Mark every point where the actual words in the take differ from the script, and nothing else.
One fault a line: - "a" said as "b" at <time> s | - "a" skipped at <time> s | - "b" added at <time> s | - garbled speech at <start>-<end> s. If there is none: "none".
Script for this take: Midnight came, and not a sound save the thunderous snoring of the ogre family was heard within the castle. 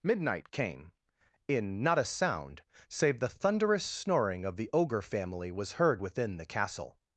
- "and" said as "in" at 1.5 s